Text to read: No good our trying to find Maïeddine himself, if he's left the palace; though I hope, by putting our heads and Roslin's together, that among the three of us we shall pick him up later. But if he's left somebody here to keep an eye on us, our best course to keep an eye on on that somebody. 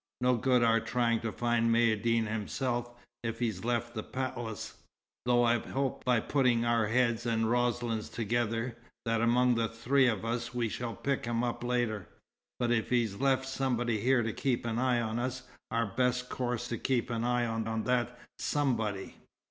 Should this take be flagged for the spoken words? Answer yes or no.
no